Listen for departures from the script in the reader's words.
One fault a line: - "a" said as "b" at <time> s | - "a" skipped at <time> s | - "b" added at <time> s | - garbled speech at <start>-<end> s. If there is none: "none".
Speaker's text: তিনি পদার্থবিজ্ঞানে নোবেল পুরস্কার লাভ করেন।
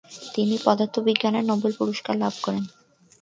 none